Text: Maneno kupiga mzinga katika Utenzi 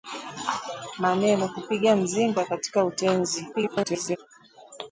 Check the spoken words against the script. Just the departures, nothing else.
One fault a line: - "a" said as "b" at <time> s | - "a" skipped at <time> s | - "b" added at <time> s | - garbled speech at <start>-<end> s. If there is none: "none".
- garbled speech at 3.5-4.2 s